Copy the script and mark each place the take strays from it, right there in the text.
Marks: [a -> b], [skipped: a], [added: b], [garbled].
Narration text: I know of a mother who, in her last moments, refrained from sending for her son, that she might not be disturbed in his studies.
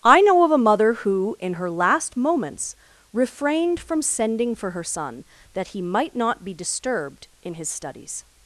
I know of a mother who, in her last moments, refrained from sending for her son, that [she -> he] might not be disturbed in his studies.